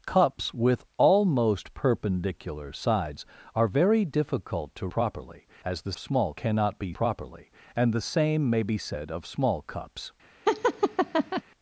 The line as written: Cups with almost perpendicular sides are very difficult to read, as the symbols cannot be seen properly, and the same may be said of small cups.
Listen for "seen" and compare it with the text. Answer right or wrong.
wrong